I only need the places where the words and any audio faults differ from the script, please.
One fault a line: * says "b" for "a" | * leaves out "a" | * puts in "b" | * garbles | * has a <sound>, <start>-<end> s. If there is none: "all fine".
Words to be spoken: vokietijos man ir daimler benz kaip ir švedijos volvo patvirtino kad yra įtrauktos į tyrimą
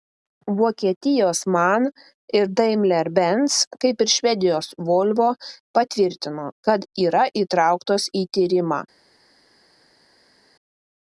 all fine